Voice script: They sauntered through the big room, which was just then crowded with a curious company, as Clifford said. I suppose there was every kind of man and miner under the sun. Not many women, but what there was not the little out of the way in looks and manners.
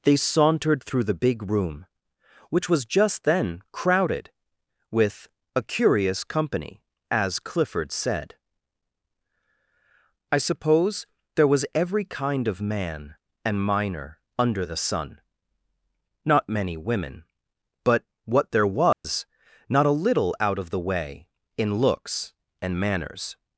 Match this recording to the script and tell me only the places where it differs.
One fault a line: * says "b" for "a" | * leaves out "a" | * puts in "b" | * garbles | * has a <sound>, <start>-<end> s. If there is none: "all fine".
* has a dropout, 18.9-19.0 s
* says "a" for "the"